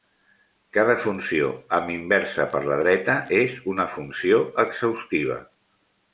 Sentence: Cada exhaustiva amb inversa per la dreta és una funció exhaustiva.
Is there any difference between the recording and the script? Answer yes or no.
yes